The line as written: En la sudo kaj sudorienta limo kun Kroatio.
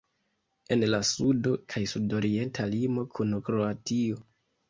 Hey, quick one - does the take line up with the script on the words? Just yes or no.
yes